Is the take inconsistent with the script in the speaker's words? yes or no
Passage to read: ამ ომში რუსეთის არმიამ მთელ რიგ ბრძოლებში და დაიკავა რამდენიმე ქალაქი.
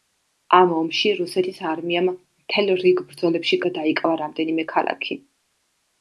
no